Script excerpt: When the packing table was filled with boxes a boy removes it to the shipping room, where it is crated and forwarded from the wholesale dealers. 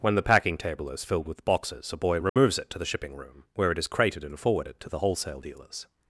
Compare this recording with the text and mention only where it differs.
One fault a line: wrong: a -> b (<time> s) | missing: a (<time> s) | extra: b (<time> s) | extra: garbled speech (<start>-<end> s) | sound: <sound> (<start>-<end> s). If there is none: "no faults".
wrong: was -> is (0.9 s)
sound: dropout (2.3-2.4 s)
wrong: from -> to (4.8 s)